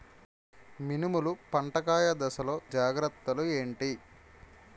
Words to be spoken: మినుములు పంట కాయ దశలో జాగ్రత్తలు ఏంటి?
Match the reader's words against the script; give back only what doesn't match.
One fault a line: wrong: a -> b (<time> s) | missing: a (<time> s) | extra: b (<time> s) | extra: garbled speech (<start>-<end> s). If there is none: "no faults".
no faults